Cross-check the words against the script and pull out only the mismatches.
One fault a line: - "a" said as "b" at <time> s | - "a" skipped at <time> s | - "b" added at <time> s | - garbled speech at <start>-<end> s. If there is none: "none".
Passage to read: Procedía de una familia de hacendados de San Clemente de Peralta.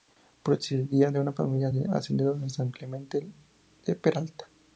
none